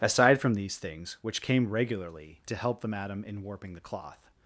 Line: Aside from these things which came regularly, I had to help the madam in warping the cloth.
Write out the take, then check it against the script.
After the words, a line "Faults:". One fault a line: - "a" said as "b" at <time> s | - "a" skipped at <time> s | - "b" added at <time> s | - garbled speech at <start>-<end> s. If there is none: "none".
Aside from these things which came regularly, to help the madam in warping the cloth.
Faults:
- "I had" skipped at 2.4 s